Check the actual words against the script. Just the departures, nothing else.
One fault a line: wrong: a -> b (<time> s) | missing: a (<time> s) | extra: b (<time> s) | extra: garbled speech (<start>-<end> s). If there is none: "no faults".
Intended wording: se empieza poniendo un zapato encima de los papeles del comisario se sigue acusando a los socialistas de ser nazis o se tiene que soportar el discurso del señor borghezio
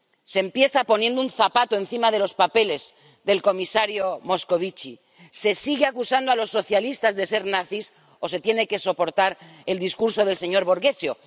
extra: moscovici (4.2 s)